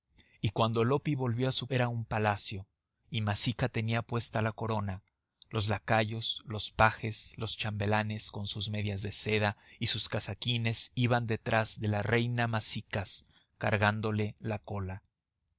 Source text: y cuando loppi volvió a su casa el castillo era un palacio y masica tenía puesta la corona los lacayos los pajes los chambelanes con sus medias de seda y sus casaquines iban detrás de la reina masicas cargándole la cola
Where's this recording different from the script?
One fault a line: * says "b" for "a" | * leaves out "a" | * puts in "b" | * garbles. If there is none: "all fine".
* leaves out "casa el castillo"